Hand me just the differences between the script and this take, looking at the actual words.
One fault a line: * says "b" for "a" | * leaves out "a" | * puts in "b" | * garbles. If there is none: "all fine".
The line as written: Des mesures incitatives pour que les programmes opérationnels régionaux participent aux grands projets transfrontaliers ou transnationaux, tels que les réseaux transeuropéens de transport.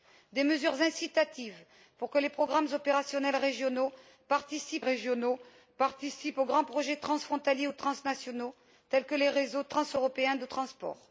* puts in "régionaux participent"